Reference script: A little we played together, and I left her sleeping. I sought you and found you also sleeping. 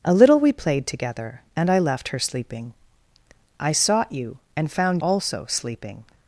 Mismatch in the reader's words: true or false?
true